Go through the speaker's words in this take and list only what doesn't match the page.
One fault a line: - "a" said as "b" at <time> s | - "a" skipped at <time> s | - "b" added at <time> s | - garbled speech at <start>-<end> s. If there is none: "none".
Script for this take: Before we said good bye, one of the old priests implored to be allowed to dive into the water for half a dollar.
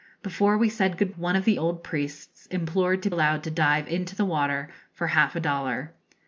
- "bye" skipped at 1.1 s
- "be" skipped at 3.1 s